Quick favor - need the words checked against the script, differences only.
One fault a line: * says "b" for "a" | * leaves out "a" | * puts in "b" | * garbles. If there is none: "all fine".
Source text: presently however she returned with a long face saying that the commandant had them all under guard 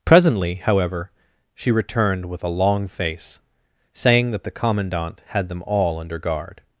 all fine